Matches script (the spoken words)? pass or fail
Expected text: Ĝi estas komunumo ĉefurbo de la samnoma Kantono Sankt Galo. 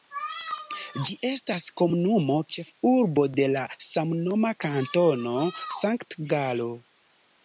pass